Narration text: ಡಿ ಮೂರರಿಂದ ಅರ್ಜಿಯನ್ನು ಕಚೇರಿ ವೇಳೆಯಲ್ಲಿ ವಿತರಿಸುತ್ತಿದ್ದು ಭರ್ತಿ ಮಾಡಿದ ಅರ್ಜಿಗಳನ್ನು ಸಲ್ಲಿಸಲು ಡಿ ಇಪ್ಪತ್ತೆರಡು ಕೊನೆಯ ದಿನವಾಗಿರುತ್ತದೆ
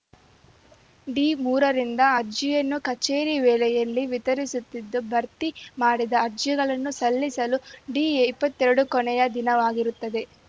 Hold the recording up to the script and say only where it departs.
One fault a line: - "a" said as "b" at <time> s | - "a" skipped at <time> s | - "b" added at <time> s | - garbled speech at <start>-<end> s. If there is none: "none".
none